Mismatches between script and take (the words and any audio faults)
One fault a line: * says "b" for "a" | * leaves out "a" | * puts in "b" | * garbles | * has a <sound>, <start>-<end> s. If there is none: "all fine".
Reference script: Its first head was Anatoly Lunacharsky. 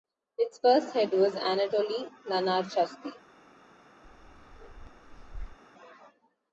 * has a bark, 4.0-5.6 s